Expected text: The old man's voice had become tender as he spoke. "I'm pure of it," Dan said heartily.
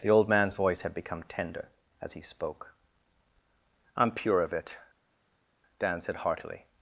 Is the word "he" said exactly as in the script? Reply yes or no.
yes